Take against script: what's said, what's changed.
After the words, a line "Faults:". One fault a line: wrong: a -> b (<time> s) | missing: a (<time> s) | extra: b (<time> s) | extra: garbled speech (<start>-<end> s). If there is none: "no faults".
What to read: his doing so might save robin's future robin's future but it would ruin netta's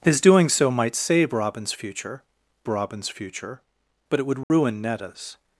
his doing so might save robin's future robin's future but it would ruin netta's
Faults:
no faults